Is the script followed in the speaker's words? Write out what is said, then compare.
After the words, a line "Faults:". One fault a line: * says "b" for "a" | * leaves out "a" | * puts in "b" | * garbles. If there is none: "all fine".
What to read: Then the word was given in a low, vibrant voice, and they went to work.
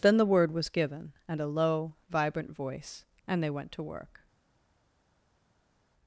Then the word was given and a low, vibrant voice, and they went to work.
Faults:
* says "and" for "in"